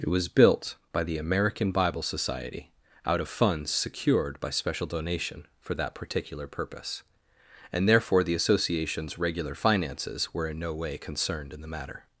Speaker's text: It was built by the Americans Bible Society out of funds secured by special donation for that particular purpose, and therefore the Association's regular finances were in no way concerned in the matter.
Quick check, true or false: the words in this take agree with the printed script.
false